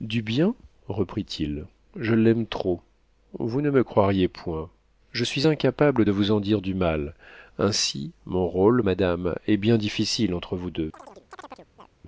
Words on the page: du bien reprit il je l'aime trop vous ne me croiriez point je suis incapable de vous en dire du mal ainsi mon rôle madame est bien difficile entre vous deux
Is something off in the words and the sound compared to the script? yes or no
yes